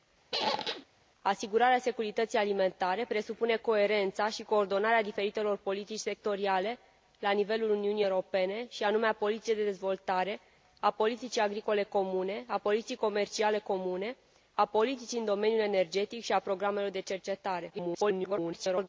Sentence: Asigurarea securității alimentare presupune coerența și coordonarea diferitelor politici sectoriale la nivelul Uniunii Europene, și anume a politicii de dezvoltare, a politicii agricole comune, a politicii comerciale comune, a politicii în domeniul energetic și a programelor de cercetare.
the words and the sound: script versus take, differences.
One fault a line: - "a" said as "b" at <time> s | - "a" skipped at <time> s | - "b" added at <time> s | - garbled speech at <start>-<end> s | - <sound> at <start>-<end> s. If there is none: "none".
- squeak at 0.3-0.9 s
- garbled speech at 17.7-18.9 s